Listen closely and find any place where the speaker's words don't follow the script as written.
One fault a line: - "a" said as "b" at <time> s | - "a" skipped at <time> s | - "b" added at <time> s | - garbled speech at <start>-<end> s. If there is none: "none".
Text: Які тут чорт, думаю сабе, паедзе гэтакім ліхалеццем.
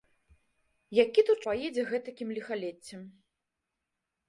- "чорт думаю сабе" skipped at 1.4 s